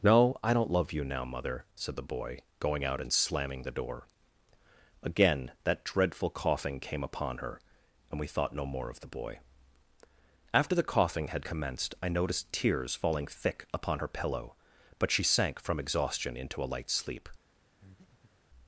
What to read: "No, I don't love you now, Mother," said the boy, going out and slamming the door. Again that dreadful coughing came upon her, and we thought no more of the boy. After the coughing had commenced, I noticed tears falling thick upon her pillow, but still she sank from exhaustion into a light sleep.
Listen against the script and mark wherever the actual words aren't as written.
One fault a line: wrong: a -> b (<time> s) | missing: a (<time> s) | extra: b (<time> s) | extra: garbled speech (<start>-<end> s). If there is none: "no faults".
missing: still (15.1 s)